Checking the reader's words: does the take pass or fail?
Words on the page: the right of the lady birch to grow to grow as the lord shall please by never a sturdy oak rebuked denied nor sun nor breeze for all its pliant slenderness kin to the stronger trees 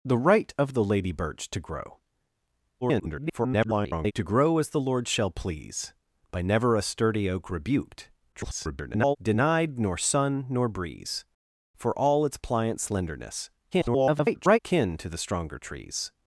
fail